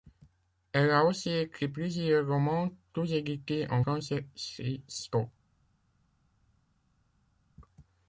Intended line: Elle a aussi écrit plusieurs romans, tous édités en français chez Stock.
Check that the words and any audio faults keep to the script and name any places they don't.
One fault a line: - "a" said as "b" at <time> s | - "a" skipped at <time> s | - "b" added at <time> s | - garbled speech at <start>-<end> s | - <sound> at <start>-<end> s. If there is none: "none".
none